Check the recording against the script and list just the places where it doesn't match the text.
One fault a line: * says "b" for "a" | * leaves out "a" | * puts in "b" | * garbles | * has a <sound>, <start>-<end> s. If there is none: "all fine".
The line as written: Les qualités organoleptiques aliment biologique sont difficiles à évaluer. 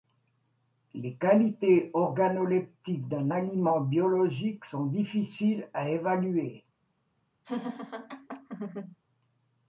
* puts in "d'un"
* has a laugh, 7.4-9.0 s